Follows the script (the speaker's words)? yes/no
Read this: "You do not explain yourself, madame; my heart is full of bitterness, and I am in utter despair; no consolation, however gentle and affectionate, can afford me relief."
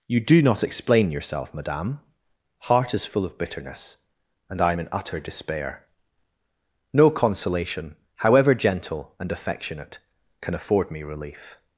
no